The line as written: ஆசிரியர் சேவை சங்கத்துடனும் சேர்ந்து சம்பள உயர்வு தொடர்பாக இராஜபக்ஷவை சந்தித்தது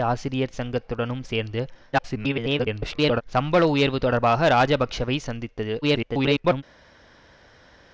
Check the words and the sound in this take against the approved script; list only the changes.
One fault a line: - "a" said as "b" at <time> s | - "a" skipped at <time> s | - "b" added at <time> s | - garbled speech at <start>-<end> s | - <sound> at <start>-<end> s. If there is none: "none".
- "சேவை" skipped at 0.6 s
- garbled speech at 1.9-3.2 s
- garbled speech at 5.8-6.6 s